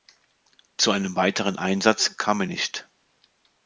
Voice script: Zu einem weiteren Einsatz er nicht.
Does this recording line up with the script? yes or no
no